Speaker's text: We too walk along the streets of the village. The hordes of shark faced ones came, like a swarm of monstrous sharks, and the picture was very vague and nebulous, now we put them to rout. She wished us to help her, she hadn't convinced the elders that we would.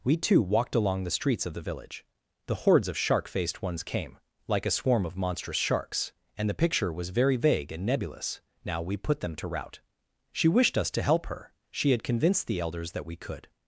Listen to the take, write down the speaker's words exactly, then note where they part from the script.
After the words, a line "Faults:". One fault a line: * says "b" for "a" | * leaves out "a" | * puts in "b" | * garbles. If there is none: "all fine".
We too walked along the streets of the village. The hordes of shark faced ones came, like a swarm of monstrous sharks, and the picture was very vague and nebulous, now we put them to rout. She wished us to help her, she had convinced the elders that we could.
Faults:
* says "walked" for "walk"
* says "had" for "hadn't"
* says "could" for "would"